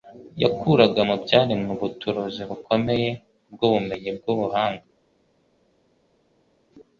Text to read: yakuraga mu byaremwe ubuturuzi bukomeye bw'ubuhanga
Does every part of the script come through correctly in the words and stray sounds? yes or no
no